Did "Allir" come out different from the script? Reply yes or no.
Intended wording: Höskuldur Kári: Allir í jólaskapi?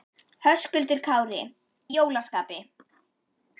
yes